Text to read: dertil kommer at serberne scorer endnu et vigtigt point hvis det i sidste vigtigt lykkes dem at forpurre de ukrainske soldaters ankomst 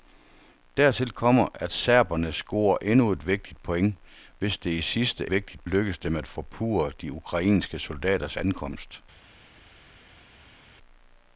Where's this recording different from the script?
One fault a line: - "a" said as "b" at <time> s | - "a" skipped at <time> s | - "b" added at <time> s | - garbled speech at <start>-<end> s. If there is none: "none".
none